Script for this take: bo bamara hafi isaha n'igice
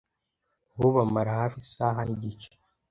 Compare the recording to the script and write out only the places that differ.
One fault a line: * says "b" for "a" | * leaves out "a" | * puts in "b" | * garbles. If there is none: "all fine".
all fine